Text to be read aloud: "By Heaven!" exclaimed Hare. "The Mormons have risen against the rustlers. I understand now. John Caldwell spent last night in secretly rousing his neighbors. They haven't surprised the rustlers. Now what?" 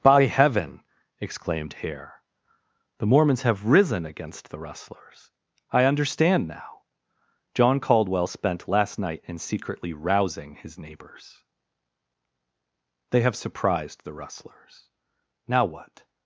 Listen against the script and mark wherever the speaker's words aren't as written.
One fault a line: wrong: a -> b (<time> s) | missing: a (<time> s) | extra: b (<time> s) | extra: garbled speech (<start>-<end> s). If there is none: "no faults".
wrong: haven't -> have (13.2 s)